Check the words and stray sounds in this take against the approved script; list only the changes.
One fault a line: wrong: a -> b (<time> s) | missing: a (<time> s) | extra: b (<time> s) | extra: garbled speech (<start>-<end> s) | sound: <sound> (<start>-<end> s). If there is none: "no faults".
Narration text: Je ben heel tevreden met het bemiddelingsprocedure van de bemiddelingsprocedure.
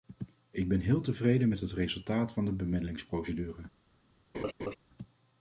wrong: Je -> Ik (0.5 s)
wrong: bemiddelingsprocedure -> resultaat (1.7 s)
sound: laugh (4.3-4.8 s)